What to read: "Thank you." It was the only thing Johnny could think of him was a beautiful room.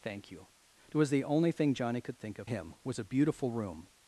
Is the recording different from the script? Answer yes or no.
no